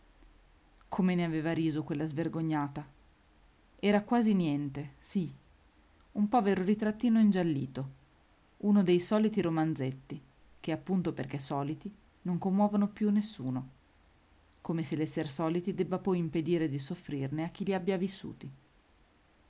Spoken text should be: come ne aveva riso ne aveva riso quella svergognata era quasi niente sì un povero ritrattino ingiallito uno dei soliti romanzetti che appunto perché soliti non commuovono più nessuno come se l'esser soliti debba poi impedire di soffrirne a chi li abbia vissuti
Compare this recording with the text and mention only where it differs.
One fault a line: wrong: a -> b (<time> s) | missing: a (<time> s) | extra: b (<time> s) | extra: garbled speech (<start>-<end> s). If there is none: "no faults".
missing: ne aveva riso (1.8 s)